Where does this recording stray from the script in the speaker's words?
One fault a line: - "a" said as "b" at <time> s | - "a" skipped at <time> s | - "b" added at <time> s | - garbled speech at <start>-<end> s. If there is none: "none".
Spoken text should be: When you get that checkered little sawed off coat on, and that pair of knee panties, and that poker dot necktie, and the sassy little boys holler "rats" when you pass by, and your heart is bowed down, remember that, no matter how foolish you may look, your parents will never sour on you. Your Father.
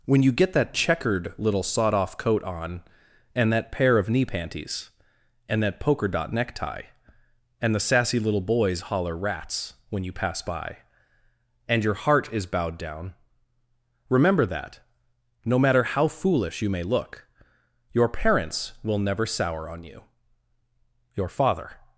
none